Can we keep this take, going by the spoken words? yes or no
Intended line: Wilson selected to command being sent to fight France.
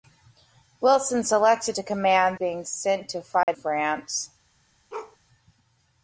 yes